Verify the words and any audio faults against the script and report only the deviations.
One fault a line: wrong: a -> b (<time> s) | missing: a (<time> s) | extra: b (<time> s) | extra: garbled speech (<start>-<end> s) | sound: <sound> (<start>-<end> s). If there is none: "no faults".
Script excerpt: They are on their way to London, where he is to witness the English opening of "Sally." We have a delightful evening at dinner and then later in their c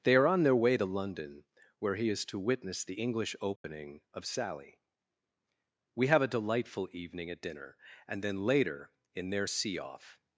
sound: dropout (3.6-3.6 s)
wrong: c -> see off (9.5 s)